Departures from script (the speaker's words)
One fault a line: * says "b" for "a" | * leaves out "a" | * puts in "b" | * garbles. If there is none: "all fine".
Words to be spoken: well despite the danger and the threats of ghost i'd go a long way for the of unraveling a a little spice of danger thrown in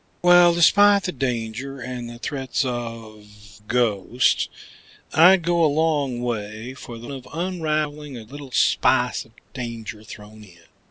all fine